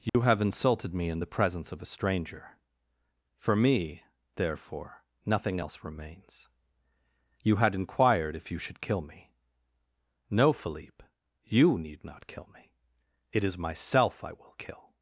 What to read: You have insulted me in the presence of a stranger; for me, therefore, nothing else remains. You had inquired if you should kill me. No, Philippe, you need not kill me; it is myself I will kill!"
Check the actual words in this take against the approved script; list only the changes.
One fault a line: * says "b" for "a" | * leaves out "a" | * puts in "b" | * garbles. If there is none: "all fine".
all fine